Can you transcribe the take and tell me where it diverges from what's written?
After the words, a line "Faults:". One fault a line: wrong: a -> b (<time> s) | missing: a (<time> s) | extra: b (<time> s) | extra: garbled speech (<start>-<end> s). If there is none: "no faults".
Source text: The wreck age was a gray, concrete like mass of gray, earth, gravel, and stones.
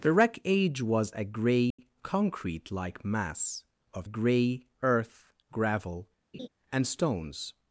The wreck age was a gray, concrete like mass of gray, earth, gravel, and stones.
Faults:
no faults